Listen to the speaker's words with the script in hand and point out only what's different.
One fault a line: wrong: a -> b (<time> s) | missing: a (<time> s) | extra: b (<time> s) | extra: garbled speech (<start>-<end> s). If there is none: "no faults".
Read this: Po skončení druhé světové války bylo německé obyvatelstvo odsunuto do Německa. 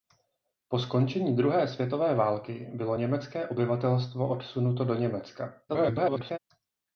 extra: garbled speech (5.7-6.4 s)